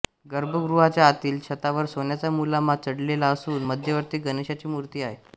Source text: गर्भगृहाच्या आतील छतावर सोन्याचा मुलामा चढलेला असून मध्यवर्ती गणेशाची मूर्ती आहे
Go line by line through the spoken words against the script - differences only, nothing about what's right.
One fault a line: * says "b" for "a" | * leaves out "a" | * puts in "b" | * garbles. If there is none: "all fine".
all fine